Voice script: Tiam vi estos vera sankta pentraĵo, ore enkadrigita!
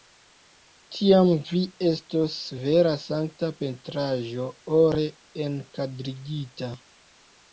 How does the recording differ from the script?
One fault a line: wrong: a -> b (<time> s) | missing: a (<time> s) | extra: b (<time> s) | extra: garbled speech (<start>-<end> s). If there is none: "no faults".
no faults